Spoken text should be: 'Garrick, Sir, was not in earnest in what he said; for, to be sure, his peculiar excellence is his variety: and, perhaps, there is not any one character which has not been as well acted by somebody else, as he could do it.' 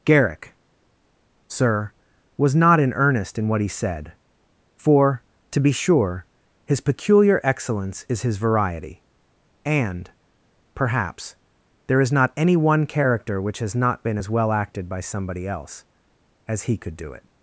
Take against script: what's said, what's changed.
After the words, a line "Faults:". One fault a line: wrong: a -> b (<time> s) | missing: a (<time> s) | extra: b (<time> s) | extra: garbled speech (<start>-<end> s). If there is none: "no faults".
'Garrick, Sir, was not in earnest in what he said; for, to be sure, his peculiar excellence is his variety: and, perhaps, there is not any one character which has not been as well acted by somebody else, as he could do it.'
Faults:
no faults